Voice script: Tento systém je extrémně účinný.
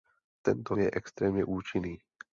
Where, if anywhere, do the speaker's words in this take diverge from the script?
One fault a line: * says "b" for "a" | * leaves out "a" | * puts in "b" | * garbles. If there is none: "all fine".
* leaves out "systém"